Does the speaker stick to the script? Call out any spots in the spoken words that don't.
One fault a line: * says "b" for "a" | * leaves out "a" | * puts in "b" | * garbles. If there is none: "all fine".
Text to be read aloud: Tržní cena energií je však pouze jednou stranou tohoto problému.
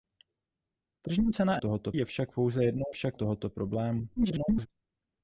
* says "tohoto" for "energií"
* says "však" for "stranou"
* garbles